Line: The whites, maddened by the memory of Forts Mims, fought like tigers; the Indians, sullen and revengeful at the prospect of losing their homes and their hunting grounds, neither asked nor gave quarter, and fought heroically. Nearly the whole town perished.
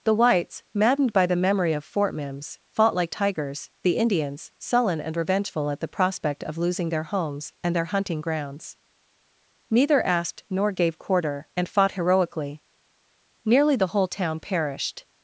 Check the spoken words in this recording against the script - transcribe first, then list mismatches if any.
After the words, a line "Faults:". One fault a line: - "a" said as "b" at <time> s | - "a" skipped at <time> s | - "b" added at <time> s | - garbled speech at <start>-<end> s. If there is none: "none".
The whites, maddened by the memory of Fort Mims, fought like tigers; the Indians, sullen and revengeful at the prospect of losing their homes and their hunting grounds, neither asked nor gave quarter, and fought heroically. Nearly the whole town perished.
Faults:
- "Forts" said as "Fort" at 1.8 s